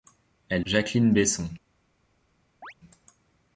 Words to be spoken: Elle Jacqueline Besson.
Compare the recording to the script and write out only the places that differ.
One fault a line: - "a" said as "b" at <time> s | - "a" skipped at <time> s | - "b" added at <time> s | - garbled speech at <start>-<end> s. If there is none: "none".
none